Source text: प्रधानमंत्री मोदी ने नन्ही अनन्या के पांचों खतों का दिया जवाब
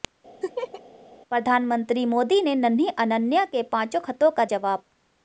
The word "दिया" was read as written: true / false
false